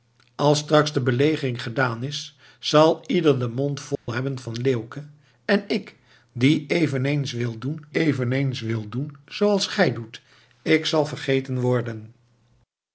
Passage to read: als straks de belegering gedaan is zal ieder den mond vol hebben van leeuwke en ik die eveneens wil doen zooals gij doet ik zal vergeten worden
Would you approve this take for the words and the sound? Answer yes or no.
no